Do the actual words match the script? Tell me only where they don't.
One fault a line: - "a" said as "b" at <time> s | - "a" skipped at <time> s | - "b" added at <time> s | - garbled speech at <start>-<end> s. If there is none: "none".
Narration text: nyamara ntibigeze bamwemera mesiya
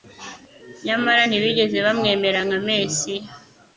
- "nka" added at 2.5 s